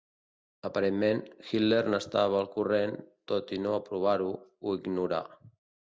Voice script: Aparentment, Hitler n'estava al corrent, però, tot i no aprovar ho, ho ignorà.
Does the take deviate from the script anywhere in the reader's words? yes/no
yes